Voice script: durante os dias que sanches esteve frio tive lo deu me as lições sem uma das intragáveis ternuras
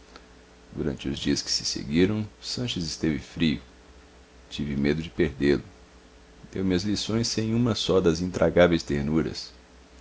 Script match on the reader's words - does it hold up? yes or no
no